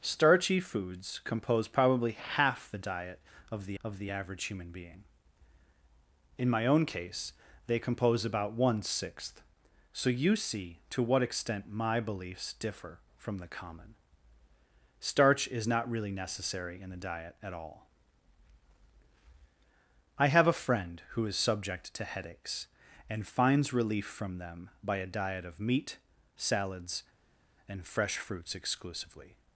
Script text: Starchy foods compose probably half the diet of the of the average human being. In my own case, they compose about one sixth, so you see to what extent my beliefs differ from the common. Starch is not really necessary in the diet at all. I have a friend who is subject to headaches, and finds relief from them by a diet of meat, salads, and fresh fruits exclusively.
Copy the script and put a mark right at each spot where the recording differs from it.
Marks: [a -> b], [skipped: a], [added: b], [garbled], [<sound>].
Starchy foods compose probably half the diet of the of the average human being. In my own case, they compose about one sixth, so you see to what extent my beliefs differ from the common. Starch is not really necessary in the diet at all. I have a friend who is subject to headaches, and finds relief from them by a diet of meat, salads, and fresh fruits exclusively.